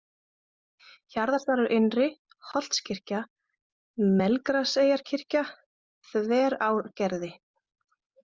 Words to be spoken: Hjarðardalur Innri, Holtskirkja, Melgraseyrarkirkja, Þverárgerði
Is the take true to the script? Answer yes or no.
yes